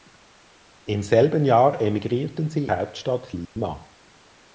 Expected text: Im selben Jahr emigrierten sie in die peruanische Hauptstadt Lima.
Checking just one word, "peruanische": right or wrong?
wrong